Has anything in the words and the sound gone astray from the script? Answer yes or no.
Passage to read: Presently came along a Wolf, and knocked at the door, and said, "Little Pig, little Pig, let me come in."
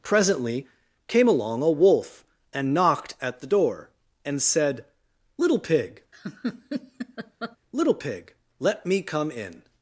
yes